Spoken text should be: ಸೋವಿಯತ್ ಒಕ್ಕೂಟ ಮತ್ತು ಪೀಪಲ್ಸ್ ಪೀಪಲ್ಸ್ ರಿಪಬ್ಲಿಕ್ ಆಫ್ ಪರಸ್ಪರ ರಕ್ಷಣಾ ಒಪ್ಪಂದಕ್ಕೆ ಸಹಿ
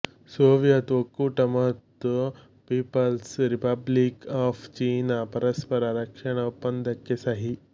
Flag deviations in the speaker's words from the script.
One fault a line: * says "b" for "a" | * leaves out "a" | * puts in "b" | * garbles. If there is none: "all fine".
* leaves out "ಪೀಪಲ್ಸ್"
* puts in "ಚೀನಾ"